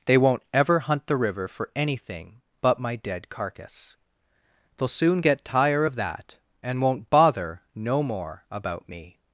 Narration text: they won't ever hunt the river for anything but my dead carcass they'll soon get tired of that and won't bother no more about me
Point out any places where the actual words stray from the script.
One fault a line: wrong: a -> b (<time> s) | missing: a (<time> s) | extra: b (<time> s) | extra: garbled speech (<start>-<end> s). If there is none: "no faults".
wrong: tired -> tire (5.5 s)